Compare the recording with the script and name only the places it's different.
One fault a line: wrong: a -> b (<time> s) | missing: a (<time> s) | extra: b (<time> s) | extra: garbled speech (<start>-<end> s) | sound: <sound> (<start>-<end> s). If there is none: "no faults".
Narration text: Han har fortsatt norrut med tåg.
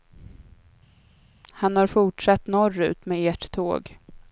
extra: ert (3.3 s)